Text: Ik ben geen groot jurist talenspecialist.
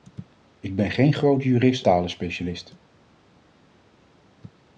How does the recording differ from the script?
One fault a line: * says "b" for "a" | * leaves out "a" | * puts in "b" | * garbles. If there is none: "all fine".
all fine